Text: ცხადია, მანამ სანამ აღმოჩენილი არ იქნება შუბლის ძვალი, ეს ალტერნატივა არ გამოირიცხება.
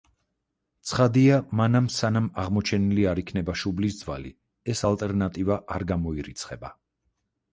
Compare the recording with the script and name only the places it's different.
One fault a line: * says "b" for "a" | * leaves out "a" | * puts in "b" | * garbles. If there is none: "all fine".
all fine